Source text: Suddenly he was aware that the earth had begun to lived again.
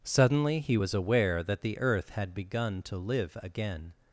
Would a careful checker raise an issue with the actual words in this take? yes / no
yes